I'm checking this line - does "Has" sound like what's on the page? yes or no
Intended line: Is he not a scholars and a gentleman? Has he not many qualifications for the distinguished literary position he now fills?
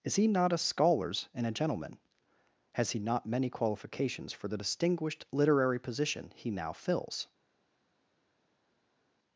yes